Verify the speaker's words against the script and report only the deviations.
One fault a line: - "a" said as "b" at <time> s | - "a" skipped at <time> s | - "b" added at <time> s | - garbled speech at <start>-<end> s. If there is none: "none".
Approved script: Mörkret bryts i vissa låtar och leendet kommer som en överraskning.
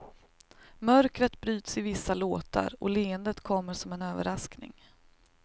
none